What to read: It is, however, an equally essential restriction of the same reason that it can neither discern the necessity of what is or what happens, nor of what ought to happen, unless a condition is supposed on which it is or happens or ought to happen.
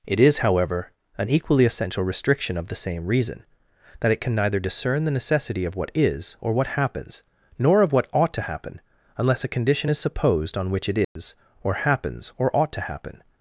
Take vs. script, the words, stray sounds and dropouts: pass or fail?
fail